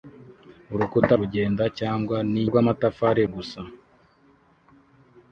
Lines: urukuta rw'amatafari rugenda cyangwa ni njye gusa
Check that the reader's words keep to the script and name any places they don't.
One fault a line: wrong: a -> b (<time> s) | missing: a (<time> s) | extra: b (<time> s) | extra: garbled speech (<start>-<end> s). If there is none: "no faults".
missing: rw'amatafari (1.1 s)
wrong: njye -> rw'amatafari (2.5 s)